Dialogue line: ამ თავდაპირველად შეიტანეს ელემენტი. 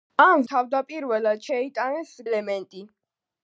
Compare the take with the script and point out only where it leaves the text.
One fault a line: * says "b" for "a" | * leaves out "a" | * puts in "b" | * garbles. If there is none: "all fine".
all fine